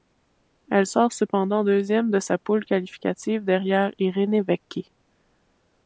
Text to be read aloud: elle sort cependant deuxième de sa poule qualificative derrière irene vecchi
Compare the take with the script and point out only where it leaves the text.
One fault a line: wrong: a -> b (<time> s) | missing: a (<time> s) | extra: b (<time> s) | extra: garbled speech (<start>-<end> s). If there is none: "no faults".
no faults